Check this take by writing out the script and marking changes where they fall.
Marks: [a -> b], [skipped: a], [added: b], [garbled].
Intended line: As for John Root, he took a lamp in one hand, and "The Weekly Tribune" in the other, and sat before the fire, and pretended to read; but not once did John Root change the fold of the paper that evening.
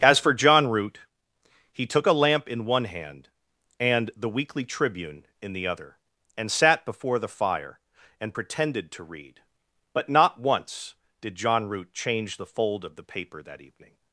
As for John Root, he took a lamp in one hand, and "The Weekly Tribune" in the other, and sat before the fire, and pretended to read; but not once did John Root change the fold of the paper that evening.